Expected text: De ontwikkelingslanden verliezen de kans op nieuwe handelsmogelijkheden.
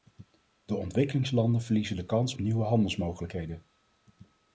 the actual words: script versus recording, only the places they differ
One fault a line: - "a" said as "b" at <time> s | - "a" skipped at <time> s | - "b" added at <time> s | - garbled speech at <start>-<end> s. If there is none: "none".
- "op" skipped at 2.4 s